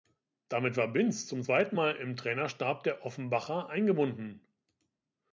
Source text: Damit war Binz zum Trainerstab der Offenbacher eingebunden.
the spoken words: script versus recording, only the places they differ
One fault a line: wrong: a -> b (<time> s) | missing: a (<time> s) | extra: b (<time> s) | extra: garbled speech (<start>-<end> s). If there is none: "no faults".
extra: zweiten Mal im (1.4 s)